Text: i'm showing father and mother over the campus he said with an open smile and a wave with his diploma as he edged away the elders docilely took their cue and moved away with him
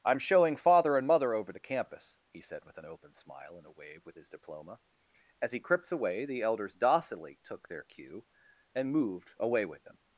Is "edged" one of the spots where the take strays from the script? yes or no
yes